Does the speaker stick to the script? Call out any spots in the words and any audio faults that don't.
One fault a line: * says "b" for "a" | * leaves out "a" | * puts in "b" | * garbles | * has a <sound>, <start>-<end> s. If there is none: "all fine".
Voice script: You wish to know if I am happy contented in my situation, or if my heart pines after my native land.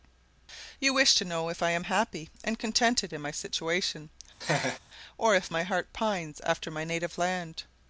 * puts in "and"
* has a laugh, 4.4-4.8 s